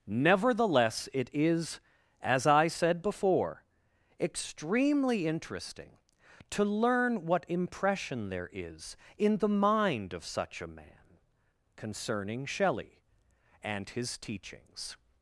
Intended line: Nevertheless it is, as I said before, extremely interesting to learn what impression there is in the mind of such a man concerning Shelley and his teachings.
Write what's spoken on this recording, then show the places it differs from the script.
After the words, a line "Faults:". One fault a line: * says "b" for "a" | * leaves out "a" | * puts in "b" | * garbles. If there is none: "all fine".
Nevertheless it is, as I said before, extremely interesting to learn what impression there is in the mind of such a man concerning Shelley and his teachings.
Faults:
all fine